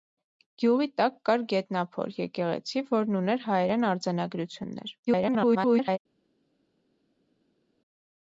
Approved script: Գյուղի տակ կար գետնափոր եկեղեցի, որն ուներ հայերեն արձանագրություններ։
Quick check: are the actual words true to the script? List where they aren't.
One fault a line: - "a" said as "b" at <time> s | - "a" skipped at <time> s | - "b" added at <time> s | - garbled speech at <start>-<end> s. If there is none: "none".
- garbled speech at 5.1-6.0 s